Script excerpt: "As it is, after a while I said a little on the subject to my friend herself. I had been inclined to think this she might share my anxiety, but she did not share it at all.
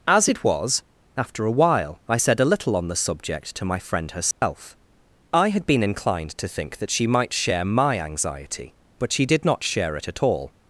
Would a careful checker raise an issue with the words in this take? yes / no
yes